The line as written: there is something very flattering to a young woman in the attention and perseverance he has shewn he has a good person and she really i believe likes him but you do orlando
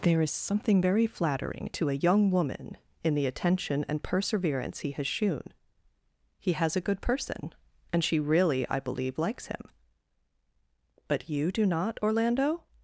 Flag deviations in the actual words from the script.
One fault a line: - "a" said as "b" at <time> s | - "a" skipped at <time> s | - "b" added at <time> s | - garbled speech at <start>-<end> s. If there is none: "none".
- "not" added at 11.7 s